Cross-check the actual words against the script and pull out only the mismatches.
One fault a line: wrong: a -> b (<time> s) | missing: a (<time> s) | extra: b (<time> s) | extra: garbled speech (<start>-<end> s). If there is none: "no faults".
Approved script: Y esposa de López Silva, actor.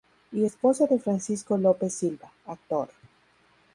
extra: Francisco (1.0 s)